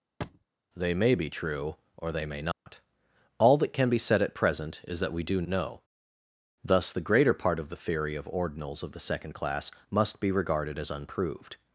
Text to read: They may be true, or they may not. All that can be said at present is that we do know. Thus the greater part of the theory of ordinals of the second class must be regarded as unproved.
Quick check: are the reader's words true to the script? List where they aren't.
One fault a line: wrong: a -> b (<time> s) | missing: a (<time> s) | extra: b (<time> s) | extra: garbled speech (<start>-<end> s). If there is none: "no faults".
no faults